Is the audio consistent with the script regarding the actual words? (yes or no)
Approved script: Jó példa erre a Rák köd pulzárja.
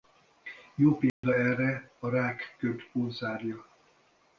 yes